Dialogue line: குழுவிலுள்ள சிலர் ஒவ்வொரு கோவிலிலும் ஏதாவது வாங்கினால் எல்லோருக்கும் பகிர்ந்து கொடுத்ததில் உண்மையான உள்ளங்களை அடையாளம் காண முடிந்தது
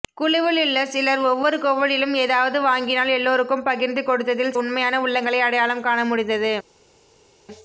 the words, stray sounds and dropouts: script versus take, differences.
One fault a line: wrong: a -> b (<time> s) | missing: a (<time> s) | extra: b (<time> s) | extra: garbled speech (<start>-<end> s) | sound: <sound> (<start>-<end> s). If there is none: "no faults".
no faults